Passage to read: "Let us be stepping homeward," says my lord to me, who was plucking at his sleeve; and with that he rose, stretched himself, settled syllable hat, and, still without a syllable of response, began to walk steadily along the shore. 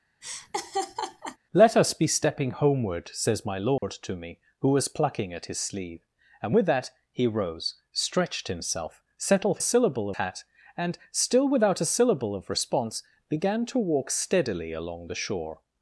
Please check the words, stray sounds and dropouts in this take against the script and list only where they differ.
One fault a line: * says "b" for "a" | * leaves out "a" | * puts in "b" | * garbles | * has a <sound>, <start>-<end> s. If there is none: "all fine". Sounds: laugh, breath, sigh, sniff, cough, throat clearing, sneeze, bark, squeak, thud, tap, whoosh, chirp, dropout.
* has a laugh, 0.2-1.4 s
* has a dropout, 3.8-3.8 s